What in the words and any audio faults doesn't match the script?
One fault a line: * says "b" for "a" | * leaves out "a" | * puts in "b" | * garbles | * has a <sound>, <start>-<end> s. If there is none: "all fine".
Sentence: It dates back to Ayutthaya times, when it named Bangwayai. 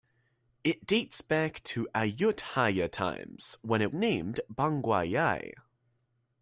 all fine